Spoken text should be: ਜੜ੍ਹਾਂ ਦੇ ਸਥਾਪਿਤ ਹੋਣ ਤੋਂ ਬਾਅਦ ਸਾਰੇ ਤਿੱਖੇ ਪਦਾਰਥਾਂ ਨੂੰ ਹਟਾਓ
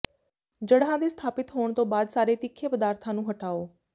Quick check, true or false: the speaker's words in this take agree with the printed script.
true